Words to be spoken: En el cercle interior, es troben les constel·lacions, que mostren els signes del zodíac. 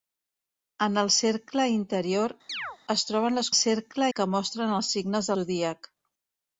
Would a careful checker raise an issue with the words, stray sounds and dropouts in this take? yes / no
yes